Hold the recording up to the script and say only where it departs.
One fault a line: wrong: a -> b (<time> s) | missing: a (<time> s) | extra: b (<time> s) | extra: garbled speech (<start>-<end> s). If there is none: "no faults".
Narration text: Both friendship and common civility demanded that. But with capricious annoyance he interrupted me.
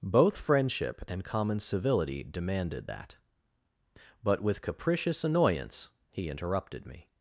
no faults